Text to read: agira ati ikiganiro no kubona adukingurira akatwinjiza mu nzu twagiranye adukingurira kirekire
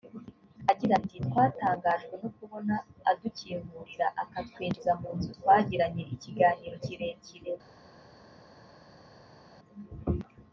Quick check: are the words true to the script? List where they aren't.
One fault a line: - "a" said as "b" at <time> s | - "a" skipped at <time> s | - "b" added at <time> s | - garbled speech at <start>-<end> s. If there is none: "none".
- "ikiganiro" said as "twatangajwe" at 1.3 s
- "adukingurira" said as "ikiganiro" at 6.1 s